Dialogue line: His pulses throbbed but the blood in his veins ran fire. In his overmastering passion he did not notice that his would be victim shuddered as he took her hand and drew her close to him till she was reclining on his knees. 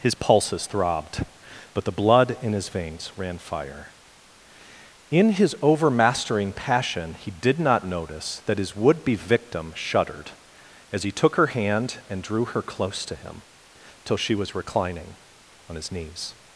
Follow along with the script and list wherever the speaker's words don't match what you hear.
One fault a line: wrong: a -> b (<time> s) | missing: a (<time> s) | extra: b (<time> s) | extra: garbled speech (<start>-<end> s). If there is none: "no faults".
no faults